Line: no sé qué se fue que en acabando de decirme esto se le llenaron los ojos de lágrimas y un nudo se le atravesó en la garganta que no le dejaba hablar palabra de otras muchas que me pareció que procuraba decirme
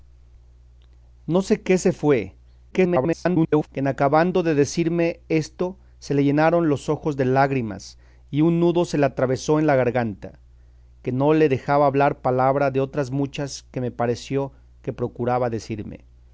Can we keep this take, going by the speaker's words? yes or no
no